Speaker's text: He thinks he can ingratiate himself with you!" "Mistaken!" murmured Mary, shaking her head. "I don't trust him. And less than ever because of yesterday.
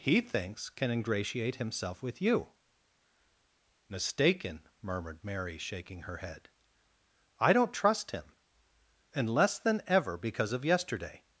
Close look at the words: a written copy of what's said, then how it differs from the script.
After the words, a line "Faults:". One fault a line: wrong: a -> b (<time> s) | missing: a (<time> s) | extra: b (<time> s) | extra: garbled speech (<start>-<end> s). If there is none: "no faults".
He thinks can ingratiate himself with you!" "Mistaken!" murmured Mary, shaking her head. "I don't trust him. And less than ever because of yesterday.
Faults:
missing: he (0.7 s)